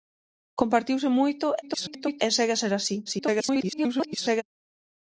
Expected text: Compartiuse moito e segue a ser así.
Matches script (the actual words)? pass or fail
fail